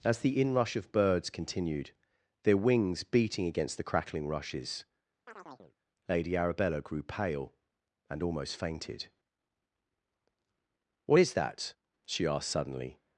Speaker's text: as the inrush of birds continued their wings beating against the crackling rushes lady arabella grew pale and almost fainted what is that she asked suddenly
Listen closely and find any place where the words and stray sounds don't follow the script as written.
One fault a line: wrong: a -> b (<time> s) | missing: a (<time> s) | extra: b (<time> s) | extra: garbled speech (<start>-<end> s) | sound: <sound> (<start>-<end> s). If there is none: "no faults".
sound: chirp (5.3-5.8 s)